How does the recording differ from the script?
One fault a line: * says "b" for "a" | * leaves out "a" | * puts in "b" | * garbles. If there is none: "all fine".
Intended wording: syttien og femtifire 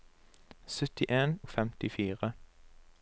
all fine